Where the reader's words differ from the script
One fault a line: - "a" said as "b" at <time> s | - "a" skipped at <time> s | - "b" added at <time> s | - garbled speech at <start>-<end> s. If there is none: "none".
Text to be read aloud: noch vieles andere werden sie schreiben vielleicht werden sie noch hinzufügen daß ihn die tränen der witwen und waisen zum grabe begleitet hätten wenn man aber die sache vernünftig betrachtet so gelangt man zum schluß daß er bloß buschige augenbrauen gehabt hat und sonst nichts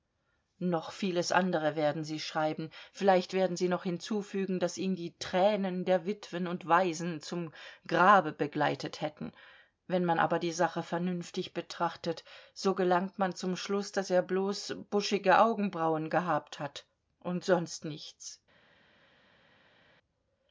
none